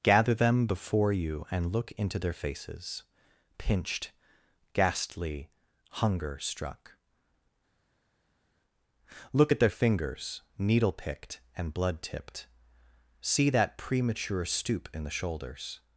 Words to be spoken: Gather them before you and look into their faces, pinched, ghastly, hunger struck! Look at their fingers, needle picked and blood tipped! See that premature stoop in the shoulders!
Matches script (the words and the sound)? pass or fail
pass